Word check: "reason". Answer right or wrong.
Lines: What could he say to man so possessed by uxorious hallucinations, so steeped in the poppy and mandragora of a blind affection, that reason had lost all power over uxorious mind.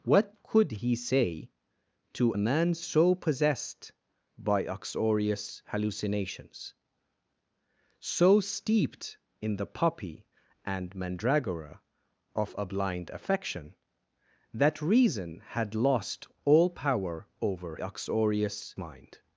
right